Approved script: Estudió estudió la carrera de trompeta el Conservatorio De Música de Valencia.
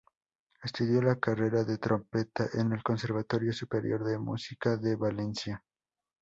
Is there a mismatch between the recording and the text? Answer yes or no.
yes